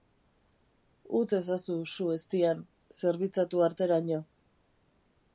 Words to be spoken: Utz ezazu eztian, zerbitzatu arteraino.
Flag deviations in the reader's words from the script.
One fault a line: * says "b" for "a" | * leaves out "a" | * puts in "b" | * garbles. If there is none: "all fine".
* puts in "su"